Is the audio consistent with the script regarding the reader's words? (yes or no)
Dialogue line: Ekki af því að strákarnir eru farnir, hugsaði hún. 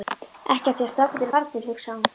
yes